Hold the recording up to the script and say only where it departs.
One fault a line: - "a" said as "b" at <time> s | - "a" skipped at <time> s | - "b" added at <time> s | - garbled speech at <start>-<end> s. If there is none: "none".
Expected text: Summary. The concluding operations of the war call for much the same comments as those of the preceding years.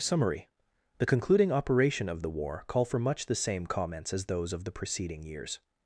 - "operations" said as "operation" at 1.5 s